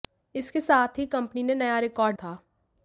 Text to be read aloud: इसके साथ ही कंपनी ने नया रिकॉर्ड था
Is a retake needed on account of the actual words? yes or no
no